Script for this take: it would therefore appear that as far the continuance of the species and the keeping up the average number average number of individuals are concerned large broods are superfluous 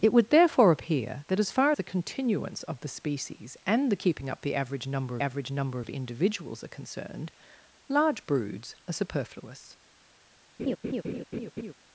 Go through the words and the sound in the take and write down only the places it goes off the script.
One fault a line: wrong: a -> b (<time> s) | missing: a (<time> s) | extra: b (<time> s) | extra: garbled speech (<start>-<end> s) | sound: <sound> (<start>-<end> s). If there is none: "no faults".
sound: laugh (10.6-11.7 s)